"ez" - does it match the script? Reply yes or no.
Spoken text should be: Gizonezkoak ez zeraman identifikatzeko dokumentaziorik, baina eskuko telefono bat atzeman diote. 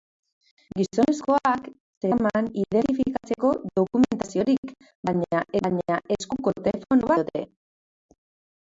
no